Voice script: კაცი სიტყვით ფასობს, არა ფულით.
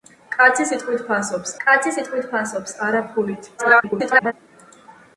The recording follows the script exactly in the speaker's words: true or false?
false